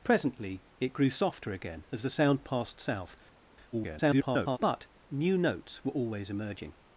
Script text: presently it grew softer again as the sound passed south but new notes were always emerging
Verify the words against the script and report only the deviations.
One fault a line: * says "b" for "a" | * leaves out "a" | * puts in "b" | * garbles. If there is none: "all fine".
* garbles